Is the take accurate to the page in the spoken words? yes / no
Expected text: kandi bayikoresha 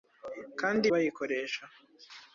yes